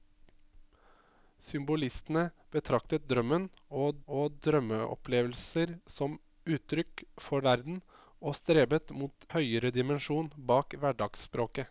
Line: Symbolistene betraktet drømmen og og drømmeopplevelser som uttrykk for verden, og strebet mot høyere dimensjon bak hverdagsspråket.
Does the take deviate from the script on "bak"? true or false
false